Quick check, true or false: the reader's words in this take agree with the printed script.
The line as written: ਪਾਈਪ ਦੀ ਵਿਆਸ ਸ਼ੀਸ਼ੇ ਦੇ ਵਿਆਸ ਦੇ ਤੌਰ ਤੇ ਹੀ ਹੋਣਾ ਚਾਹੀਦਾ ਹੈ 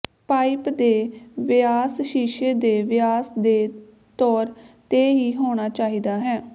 false